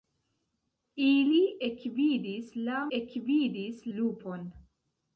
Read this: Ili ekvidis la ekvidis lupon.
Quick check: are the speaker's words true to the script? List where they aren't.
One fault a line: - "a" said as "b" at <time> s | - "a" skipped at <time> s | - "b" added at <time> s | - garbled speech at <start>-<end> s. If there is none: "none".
none